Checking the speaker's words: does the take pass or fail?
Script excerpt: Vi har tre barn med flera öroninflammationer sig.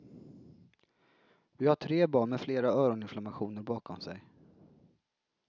fail